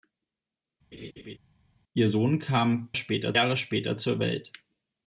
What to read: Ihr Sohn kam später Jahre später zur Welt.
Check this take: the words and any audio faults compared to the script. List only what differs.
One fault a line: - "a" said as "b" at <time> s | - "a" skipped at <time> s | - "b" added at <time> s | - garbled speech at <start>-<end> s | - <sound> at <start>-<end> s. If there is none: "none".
- laugh at 0.9-1.4 s